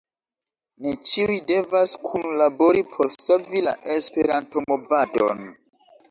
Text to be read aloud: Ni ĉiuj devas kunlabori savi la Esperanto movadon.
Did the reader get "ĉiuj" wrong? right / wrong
right